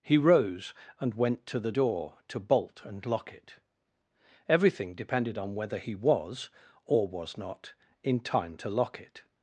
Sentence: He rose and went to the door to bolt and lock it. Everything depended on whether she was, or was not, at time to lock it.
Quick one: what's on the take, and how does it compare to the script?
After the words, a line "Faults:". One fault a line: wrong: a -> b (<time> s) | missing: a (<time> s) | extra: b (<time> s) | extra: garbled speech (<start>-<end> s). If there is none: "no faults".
He rose and went to the door to bolt and lock it. Everything depended on whether he was, or was not, in time to lock it.
Faults:
wrong: she -> he (5.8 s)
wrong: at -> in (8.0 s)